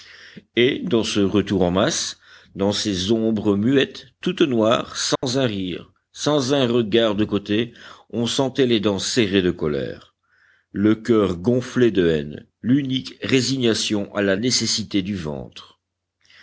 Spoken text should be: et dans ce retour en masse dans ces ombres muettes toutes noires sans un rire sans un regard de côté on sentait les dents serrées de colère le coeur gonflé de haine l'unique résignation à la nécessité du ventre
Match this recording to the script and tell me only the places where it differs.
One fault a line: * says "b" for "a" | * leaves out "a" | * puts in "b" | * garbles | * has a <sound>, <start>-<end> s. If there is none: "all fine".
* has a dropout, 5.2-5.2 s